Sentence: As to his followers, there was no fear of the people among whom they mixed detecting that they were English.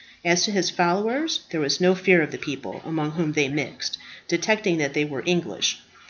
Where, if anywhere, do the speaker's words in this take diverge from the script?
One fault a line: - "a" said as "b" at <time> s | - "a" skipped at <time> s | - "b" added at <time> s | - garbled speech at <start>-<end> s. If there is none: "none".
none